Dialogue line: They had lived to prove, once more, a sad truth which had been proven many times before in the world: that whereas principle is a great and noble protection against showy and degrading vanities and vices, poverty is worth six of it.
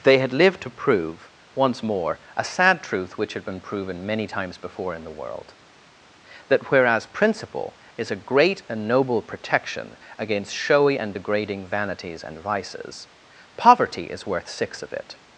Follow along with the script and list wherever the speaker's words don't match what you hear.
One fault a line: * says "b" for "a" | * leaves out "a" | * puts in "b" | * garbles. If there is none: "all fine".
all fine